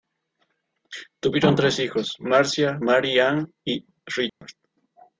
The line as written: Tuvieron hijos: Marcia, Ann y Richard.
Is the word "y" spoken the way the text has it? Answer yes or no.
yes